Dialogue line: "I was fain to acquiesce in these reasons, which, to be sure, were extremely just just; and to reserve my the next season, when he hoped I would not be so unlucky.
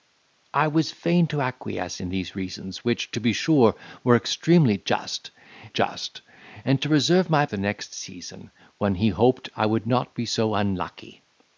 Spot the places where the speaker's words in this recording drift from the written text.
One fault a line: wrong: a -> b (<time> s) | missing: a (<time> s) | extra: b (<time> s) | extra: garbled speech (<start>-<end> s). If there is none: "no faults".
no faults